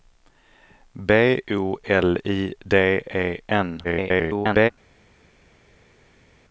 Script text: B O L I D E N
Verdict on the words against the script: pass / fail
fail